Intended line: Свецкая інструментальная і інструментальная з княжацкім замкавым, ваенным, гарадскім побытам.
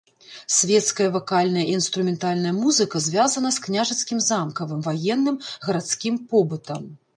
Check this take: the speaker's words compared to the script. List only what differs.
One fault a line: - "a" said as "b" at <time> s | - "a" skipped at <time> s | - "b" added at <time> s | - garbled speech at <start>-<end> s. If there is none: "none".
- "інструментальная" said as "вакальная" at 1.2 s
- "музыка звязана" added at 2.6 s